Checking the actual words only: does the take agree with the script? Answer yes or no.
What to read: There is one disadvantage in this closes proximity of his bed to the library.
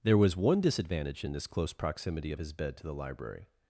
no